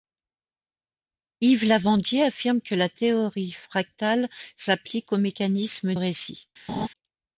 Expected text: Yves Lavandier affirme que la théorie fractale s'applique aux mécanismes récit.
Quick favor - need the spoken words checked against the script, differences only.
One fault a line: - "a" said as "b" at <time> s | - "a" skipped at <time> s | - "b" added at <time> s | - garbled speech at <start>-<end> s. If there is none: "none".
none